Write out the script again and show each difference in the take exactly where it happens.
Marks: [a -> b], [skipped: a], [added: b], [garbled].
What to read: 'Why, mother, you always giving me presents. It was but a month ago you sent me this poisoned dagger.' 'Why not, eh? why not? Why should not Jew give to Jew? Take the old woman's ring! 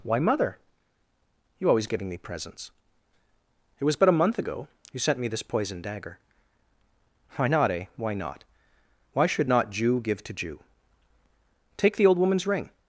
'Why, mother, you always giving me presents. It was but a month ago you sent me this poisoned dagger.' 'Why not, eh? why not? Why should not Jew give to Jew? Take the old woman's ring!